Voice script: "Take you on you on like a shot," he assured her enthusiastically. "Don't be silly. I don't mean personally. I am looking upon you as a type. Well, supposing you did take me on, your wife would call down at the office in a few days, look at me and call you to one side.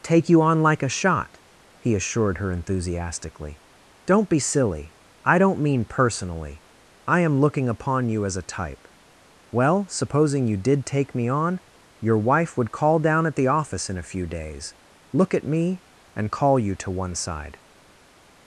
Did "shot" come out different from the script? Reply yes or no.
no